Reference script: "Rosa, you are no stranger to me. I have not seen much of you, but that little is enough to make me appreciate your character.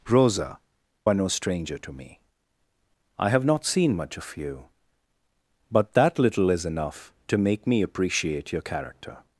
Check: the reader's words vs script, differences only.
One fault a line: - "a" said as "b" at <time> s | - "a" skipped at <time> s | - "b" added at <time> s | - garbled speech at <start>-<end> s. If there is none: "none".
- "you" skipped at 0.6 s